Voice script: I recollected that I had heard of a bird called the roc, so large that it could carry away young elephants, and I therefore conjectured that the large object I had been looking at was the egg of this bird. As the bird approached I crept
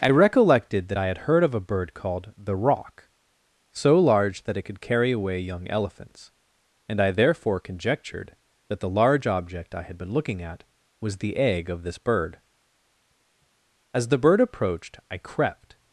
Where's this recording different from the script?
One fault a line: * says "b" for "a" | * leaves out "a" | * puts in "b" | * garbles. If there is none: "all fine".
all fine